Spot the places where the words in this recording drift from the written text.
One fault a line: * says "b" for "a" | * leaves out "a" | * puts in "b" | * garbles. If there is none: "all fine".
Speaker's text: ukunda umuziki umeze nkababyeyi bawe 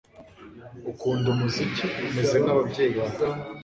all fine